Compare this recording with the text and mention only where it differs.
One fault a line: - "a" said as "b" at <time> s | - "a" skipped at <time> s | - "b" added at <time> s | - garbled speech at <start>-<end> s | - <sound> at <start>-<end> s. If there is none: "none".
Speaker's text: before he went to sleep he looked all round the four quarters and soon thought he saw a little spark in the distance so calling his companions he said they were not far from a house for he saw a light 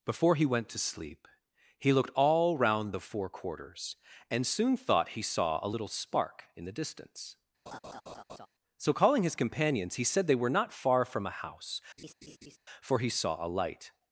- laugh at 7.7-8.5 s
- laugh at 12.0-12.6 s